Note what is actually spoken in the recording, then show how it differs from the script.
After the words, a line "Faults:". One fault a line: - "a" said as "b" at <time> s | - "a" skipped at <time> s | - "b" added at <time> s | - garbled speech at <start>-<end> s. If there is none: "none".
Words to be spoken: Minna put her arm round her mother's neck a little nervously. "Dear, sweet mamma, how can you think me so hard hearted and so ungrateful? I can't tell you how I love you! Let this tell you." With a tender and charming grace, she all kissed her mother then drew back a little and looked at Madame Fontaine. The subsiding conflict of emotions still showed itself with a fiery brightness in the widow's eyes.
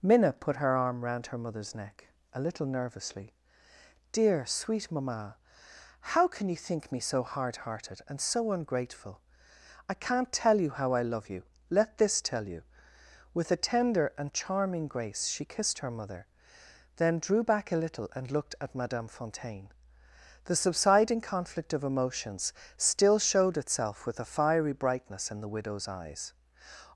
Minna put her arm round her mother's neck a little nervously. "Dear, sweet mamma, how can you think me so hard hearted and so ungrateful? I can't tell you how I love you! Let this tell you." With a tender and charming grace, she kissed her mother then drew back a little and looked at Madame Fontaine. The subsiding conflict of emotions still showed itself with a fiery brightness in the widow's eyes.
Faults:
- "all" skipped at 15.4 s